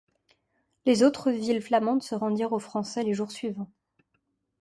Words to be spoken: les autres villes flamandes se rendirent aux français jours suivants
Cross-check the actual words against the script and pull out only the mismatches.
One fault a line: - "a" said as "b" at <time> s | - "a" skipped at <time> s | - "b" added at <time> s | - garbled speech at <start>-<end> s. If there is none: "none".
- "les" added at 3.0 s